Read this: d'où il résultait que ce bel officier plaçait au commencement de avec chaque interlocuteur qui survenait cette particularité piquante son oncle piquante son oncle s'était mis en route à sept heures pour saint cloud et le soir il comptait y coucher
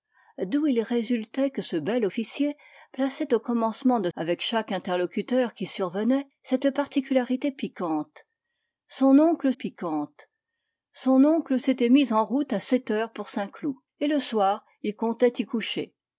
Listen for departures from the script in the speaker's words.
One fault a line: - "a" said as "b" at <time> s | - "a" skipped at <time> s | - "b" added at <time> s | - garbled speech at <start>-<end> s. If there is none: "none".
none